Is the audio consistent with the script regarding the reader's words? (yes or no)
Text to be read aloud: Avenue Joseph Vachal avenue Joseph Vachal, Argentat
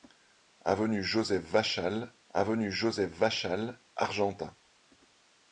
yes